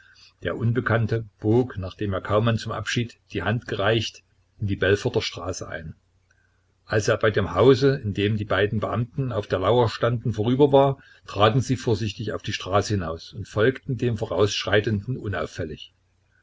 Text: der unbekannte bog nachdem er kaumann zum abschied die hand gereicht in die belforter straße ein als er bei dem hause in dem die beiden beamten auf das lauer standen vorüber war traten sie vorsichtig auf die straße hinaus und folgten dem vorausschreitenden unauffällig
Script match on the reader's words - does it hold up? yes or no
no